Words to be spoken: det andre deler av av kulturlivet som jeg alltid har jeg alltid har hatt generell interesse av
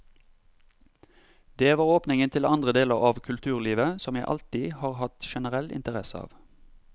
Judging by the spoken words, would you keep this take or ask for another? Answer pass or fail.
fail